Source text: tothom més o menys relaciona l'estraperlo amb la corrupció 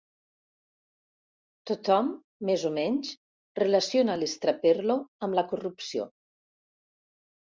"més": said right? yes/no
yes